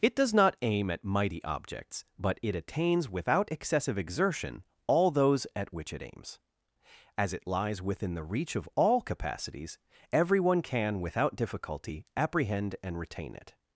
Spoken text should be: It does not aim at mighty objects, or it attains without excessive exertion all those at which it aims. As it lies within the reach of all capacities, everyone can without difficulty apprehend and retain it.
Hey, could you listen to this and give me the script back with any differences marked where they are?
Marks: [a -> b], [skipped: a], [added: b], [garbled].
It does not aim at mighty objects, [or -> but] it attains without excessive exertion all those at which it aims. As it lies within the reach of all capacities, everyone can without difficulty apprehend and retain it.